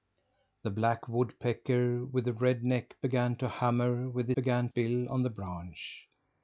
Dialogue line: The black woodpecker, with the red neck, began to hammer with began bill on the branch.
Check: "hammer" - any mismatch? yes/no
no